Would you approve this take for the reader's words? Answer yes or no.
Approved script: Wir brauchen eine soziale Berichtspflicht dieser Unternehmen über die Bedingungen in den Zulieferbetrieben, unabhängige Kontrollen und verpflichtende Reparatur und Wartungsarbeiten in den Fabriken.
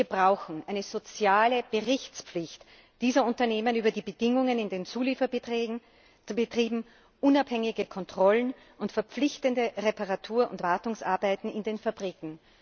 yes